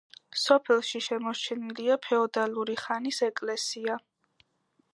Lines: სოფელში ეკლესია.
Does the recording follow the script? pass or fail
fail